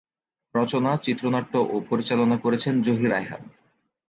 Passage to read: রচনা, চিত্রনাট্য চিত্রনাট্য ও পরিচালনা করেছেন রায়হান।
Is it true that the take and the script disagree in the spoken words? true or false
true